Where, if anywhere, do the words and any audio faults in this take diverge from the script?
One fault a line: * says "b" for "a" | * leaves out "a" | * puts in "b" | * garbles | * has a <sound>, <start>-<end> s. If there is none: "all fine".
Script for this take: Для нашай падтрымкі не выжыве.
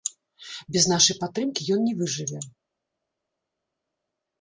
* says "Без" for "Для"
* puts in "ён"